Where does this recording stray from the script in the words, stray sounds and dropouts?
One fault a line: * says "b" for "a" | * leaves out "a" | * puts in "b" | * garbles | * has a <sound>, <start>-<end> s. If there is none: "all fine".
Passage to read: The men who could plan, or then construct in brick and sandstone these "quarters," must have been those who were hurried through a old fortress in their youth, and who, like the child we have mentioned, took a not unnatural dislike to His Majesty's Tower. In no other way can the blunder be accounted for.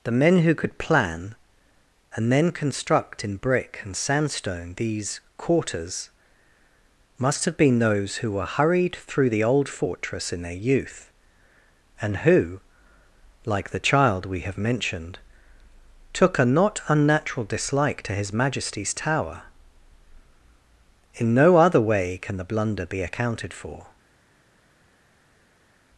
* says "and" for "or"
* says "the" for "a"